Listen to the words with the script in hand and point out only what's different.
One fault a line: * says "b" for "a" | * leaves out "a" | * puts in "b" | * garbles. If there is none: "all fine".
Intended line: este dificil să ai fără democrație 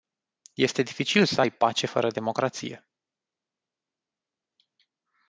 * puts in "pace"